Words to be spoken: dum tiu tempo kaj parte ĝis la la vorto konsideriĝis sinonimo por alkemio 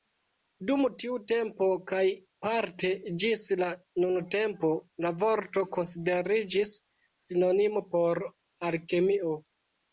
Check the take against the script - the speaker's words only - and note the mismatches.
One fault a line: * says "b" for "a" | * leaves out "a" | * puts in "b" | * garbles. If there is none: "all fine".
* puts in "nuntempo"